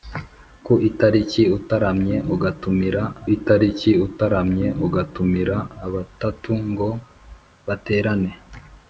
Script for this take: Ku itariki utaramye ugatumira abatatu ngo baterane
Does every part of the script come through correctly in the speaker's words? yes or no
no